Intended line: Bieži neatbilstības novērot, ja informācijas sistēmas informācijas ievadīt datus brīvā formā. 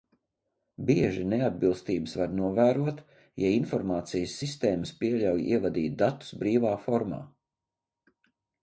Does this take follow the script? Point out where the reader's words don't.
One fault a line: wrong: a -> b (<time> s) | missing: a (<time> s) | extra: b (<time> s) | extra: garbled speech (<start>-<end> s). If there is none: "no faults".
extra: var (2.2 s)
wrong: informācijas -> pieļauj (5.0 s)